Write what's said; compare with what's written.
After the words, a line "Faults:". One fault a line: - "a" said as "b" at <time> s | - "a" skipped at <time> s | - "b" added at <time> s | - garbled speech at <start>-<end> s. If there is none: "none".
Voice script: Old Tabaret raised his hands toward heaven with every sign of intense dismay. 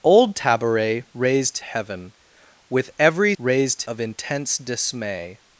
Old Tabaret raised heaven with every raised of intense dismay.
Faults:
- "his hands toward" skipped at 1.6 s
- "sign" said as "raised" at 3.4 s